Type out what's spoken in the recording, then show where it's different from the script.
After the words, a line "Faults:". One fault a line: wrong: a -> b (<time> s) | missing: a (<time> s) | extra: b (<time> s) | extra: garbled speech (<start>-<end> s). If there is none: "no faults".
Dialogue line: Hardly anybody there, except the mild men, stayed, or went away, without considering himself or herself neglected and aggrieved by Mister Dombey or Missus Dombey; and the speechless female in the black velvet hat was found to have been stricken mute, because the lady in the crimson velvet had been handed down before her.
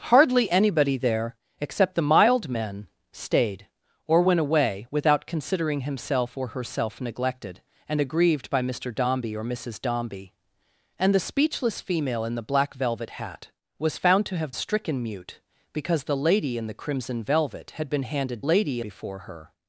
Hardly anybody there, except the mild men, stayed, or went away, without considering himself or herself neglected and aggrieved by Mister Dombey or Missus Dombey; and the speechless female in the black velvet hat was found to have stricken mute, because the lady in the crimson velvet had been handed lady before her.
Faults:
missing: been (14.5 s)
wrong: down -> lady (18.4 s)